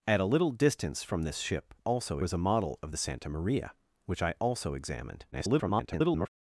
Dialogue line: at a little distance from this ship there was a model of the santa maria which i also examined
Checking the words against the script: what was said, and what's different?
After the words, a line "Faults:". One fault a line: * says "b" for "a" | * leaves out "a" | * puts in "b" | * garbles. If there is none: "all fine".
at a little distance from this ship also was a model of the santa maria which i also examined [garbled]
Faults:
* says "also" for "there"
* garbles